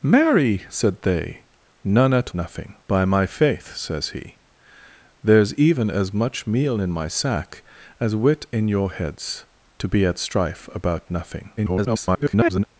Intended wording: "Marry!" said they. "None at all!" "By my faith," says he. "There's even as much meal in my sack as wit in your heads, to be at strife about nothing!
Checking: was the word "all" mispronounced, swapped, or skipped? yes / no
yes